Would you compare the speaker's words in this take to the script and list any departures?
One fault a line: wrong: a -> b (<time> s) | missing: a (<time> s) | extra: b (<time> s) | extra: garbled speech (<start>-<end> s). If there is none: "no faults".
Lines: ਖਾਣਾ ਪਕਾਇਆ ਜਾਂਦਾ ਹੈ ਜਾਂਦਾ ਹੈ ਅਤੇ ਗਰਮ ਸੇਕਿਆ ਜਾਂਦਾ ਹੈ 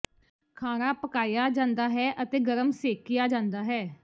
missing: ਜਾਂਦਾ ਹੈ (2.1 s)